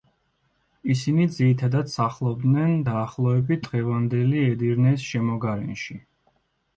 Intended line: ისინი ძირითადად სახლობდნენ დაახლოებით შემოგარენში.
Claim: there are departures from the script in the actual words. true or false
true